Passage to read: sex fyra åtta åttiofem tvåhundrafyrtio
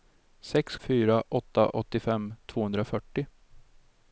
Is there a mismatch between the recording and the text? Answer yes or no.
no